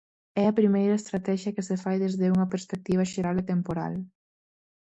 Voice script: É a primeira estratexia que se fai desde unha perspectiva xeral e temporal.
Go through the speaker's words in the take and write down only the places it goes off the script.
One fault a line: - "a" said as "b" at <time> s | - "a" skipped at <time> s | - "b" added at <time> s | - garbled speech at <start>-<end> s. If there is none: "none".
none